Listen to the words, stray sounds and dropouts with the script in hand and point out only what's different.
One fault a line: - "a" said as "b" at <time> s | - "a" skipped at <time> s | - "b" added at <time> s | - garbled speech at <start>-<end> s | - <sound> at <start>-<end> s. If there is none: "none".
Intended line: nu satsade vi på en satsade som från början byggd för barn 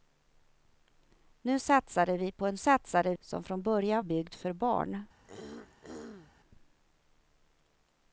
- throat clearing at 5.2-6.3 s